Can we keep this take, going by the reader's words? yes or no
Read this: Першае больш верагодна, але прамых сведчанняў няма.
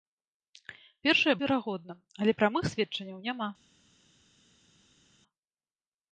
no